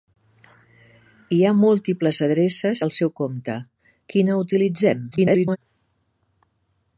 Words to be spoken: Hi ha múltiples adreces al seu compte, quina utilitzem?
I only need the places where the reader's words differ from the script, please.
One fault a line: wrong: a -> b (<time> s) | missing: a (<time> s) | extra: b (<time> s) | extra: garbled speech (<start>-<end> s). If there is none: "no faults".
extra: garbled speech (5.1-5.6 s)